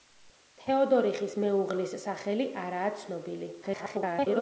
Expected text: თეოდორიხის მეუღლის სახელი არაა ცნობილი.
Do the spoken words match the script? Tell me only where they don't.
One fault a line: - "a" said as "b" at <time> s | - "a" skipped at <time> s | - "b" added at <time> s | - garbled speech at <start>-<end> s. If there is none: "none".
- garbled speech at 3.6-4.4 s